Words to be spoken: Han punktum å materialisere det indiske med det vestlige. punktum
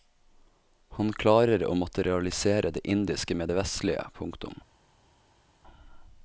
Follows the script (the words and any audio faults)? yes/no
no